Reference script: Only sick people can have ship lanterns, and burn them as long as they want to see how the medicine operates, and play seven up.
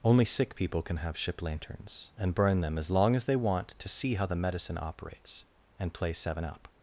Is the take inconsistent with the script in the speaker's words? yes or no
no